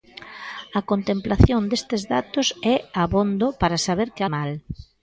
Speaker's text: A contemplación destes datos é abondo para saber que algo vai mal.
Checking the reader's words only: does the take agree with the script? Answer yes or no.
no